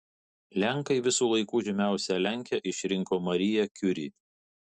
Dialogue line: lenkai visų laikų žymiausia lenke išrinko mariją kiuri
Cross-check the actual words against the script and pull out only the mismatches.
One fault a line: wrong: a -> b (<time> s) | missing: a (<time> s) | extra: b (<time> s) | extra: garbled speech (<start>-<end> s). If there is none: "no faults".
no faults